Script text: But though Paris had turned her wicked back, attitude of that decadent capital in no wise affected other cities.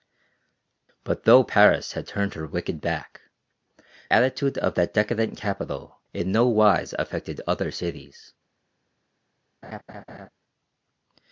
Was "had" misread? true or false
false